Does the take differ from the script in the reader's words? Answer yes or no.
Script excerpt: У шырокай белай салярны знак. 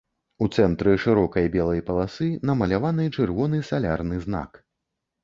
yes